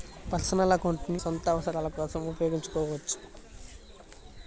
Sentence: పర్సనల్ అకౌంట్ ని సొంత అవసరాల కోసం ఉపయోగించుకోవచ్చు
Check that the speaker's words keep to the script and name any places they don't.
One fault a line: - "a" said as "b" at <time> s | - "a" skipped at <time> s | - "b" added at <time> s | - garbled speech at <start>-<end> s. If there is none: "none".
none